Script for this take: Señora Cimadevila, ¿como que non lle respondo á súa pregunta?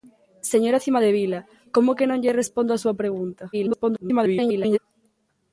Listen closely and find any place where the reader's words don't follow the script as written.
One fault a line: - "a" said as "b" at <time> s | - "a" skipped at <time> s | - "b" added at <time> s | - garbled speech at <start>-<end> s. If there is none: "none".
- garbled speech at 3.5-4.8 s